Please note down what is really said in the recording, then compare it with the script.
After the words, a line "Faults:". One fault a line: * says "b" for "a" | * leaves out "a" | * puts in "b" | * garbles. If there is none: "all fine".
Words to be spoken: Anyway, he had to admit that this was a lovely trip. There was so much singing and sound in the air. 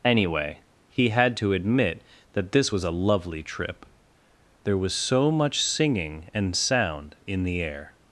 Anyway, he had to admit that this was a lovely trip. There was so much singing and sound in the air.
Faults:
all fine